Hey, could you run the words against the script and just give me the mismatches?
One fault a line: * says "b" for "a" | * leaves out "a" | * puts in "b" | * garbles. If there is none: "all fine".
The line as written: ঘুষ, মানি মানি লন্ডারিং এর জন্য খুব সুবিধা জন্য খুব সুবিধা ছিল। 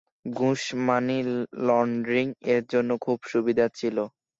* leaves out "মানি"
* leaves out "জন্য খুব সুবিধা"